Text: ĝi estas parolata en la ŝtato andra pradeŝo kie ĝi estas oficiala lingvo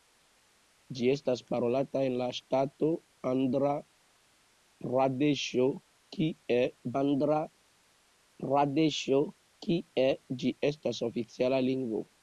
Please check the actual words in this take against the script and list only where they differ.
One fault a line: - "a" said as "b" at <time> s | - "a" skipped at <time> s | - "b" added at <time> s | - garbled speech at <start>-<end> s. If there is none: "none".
- "andra pradeŝo kie" added at 7.0 s